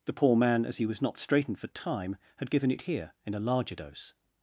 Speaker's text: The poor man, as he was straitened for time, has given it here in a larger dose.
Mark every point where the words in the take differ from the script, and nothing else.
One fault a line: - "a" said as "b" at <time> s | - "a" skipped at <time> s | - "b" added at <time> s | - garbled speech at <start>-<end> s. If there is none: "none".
- "not" added at 1.0 s
- "has" said as "had" at 2.4 s